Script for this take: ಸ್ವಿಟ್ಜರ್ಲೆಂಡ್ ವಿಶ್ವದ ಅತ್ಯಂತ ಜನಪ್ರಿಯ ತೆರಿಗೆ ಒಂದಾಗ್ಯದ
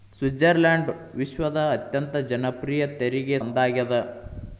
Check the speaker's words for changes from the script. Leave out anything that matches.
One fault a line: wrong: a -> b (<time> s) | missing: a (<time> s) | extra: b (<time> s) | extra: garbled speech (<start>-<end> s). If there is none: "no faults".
no faults